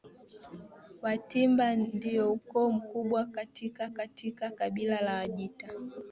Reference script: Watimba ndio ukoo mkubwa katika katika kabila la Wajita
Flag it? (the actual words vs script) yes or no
no